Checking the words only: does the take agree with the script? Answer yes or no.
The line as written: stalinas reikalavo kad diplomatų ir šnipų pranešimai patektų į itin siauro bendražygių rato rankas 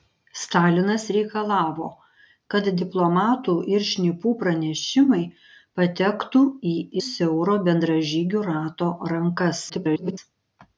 no